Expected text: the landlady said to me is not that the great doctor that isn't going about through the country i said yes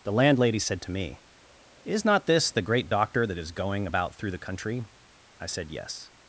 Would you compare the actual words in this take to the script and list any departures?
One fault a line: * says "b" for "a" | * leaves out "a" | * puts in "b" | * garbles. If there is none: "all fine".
* says "this" for "that"
* says "is" for "isn't"